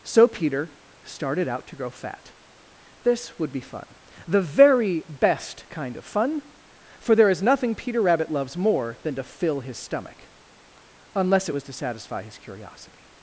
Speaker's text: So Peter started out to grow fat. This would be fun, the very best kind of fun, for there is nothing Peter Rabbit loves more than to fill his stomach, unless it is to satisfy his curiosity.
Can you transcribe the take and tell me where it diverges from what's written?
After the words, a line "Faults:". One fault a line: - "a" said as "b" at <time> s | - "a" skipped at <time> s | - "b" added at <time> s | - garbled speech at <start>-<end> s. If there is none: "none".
So Peter started out to grow fat. This would be fun, the very best kind of fun, for there is nothing Peter Rabbit loves more than to fill his stomach, unless it was to satisfy his curiosity.
Faults:
- "is" said as "was" at 11.5 s